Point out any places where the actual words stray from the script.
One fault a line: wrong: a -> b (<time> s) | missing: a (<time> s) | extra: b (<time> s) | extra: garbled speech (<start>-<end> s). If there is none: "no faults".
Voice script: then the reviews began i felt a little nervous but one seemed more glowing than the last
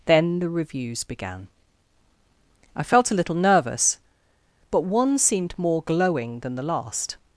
no faults